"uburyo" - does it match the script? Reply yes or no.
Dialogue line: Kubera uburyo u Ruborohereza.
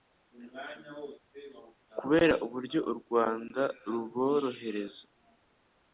yes